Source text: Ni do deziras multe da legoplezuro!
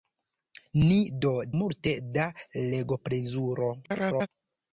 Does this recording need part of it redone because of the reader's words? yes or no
yes